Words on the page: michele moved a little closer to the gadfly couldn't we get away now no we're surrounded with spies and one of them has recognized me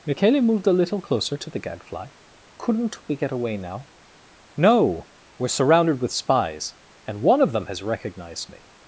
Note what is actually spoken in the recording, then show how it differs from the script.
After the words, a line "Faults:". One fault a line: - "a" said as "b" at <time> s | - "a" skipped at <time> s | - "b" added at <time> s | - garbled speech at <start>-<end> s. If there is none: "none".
michele moved a little closer to the gadfly couldn't we get away now no we're surrounded with spies and one of them has recognized me
Faults:
none